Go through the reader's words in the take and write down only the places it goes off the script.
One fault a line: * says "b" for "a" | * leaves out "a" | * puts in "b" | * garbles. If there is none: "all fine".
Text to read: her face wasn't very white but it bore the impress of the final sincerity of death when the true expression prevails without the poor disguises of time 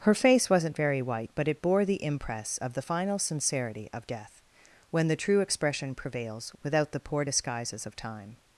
all fine